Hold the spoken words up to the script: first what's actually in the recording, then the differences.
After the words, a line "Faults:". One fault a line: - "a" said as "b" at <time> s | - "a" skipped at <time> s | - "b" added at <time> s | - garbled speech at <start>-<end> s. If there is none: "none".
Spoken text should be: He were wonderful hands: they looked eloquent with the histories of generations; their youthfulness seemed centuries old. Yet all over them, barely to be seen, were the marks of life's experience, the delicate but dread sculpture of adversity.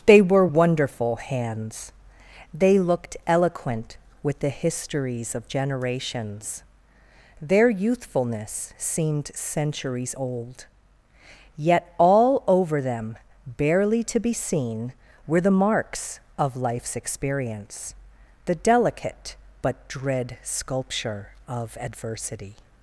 They were wonderful hands: they looked eloquent with the histories of generations; their youthfulness seemed centuries old. Yet all over them, barely to be seen, were the marks of life's experience, the delicate but dread sculpture of adversity.
Faults:
- "He" said as "They" at 0.1 s